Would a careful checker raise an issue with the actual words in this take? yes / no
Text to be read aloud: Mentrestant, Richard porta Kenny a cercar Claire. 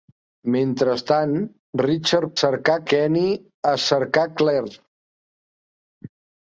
yes